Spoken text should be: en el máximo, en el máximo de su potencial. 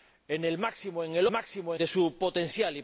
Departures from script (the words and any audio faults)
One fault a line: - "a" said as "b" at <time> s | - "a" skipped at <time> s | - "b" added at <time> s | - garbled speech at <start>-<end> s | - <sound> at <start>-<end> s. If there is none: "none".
none